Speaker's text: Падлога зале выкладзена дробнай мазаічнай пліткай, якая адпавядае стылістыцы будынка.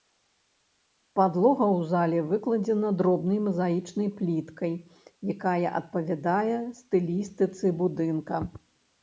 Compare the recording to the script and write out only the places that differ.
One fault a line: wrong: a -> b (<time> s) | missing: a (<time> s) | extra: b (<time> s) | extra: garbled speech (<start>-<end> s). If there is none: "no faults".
extra: ў (1.6 s)